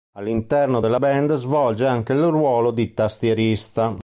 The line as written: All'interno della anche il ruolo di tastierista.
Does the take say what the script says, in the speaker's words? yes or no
no